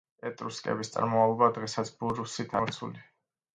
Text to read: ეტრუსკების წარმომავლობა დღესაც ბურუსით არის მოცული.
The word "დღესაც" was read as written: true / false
true